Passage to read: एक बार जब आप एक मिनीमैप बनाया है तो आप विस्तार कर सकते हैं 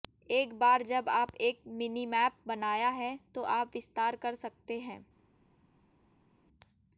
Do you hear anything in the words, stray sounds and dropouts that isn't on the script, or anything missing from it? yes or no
no